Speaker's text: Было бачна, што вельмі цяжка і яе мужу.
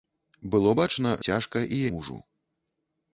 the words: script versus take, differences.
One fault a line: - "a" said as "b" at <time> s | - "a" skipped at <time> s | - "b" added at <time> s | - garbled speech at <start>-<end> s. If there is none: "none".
- "што вельмі" skipped at 1.1 s
- "яе" skipped at 1.8 s